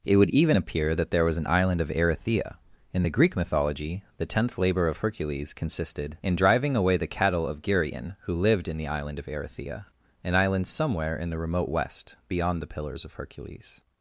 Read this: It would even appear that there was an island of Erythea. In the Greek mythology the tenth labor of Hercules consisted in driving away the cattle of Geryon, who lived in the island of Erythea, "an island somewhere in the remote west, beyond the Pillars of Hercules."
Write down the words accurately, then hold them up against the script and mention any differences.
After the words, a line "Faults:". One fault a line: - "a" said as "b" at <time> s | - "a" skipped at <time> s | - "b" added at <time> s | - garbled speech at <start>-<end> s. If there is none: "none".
It would even appear that there was an island of Erythea. In the Greek mythology the tenth labor of Hercules consisted in driving away the cattle of Geryon, who lived in the island of Erythea, "an island somewhere in the remote west, beyond the Pillars of Hercules."
Faults:
none